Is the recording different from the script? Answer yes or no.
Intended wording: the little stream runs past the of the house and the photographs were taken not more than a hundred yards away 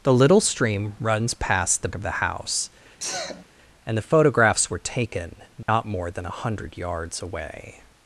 no